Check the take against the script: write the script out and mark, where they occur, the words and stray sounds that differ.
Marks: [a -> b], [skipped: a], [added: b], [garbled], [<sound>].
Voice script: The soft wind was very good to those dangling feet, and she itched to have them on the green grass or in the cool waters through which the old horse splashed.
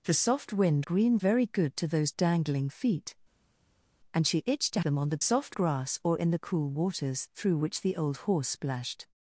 The soft wind [was -> green] very good to those dangling feet, and she itched to [skipped: have] them on the [green -> soft] grass or in the cool waters through which the old horse splashed.